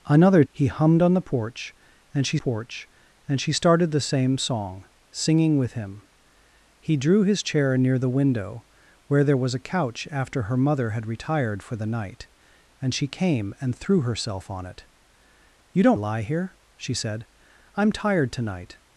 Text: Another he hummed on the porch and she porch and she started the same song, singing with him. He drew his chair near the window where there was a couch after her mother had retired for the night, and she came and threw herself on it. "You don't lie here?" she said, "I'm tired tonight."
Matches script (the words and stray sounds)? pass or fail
pass